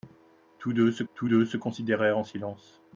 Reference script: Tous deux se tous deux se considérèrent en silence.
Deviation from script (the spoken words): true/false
false